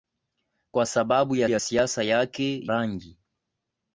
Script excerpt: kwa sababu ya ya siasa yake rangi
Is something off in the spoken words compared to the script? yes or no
no